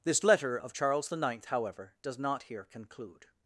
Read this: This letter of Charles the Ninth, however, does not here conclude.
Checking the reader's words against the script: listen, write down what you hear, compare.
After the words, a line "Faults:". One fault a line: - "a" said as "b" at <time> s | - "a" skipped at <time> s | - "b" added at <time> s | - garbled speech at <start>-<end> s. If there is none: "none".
This letter of Charles the Ninth, however, does not here conclude.
Faults:
none